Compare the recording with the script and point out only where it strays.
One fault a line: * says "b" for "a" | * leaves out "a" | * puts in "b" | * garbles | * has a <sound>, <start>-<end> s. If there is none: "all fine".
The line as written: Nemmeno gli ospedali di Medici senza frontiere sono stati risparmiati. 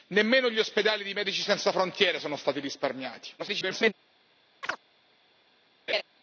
* garbles
* has a chirp, 4.6-4.8 s
* has a laugh, 5.9-6.0 s